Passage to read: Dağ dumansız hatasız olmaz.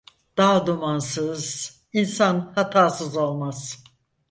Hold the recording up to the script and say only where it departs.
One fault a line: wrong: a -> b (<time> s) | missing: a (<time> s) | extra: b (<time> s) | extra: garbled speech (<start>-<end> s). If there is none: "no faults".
extra: insan (1.9 s)